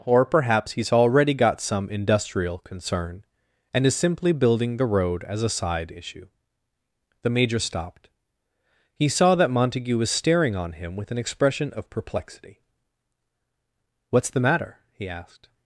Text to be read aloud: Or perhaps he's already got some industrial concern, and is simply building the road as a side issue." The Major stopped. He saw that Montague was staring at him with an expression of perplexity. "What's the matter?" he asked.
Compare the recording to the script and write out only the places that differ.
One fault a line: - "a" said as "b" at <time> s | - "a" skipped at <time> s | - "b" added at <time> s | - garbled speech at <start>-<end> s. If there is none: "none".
- "at" said as "on" at 10.6 s